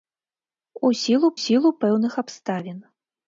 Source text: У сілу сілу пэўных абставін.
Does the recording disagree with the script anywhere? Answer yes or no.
no